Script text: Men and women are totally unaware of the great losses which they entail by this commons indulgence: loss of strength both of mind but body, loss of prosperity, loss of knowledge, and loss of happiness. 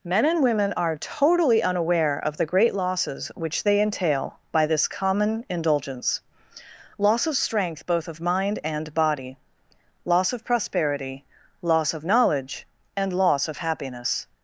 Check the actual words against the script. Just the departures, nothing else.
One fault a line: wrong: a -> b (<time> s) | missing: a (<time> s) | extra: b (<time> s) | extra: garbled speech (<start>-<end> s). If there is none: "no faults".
wrong: commons -> common (4.9 s)
wrong: but -> and (8.6 s)